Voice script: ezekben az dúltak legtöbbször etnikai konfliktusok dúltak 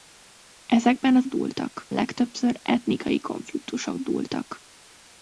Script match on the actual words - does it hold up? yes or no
yes